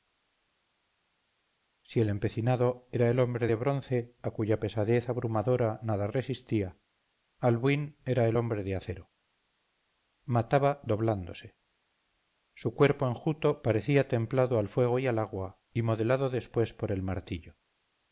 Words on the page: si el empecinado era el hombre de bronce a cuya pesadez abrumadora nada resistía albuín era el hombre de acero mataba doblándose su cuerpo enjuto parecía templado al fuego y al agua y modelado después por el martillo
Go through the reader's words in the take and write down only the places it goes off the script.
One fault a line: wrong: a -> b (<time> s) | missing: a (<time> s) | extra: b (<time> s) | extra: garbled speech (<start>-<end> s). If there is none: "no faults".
no faults